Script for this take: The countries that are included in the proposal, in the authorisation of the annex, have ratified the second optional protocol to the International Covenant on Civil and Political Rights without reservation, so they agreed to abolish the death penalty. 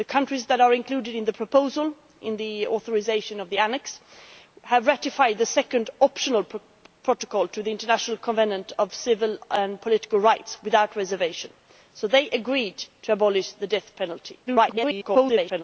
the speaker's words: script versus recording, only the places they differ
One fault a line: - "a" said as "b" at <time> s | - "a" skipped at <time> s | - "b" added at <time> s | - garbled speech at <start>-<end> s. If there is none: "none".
- garbled speech at 14.5-15.6 s